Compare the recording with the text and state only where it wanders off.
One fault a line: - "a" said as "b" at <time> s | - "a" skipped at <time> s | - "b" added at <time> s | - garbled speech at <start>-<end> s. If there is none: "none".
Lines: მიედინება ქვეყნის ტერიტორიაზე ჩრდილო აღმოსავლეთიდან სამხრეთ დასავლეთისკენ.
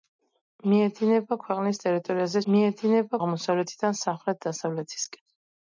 - "ჩრდილო" said as "მიედინება" at 2.5 s